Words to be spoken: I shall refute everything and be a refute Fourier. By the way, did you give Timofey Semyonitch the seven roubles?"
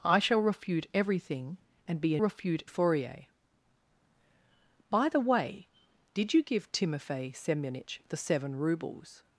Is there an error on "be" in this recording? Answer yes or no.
no